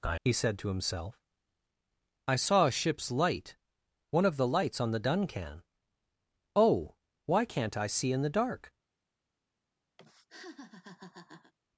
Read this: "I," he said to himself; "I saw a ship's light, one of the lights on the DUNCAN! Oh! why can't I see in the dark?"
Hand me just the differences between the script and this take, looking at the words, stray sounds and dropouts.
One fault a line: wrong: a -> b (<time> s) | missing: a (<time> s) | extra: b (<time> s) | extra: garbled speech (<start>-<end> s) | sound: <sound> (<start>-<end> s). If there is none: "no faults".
sound: laugh (10.0-11.5 s)